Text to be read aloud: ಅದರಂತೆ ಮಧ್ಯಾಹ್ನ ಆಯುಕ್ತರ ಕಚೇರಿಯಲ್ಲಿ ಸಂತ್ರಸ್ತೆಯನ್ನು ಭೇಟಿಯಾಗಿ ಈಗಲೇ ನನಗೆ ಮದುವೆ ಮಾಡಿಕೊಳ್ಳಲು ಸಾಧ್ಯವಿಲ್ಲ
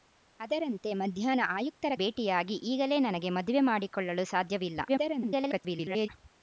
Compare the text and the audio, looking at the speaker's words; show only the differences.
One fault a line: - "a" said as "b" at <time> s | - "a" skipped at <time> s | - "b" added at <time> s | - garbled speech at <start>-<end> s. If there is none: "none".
- "ಕಚೇರಿಯಲ್ಲಿ ಸಂತ್ರಸ್ತೆಯನ್ನು" skipped at 1.9 s
- garbled speech at 4.9-6.1 s